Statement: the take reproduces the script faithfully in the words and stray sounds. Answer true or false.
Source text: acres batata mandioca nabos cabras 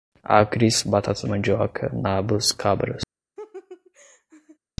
false